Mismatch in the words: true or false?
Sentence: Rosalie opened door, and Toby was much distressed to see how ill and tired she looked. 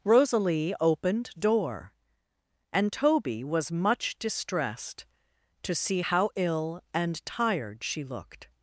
false